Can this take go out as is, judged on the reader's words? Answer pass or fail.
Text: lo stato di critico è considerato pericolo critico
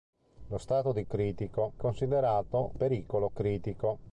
pass